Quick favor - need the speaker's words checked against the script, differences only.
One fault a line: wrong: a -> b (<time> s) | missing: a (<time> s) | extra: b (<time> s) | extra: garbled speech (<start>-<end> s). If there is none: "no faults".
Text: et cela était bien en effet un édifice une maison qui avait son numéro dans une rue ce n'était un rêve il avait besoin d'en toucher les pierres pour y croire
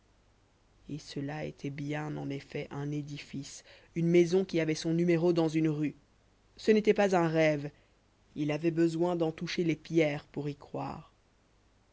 extra: pas (7.0 s)